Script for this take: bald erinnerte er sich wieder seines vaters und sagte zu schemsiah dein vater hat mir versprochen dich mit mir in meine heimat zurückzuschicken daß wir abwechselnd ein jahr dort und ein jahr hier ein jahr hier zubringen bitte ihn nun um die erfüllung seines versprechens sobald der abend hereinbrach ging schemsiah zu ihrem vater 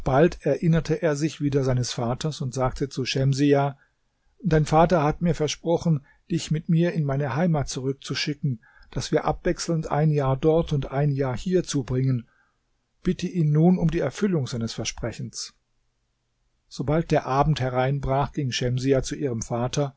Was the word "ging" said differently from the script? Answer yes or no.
no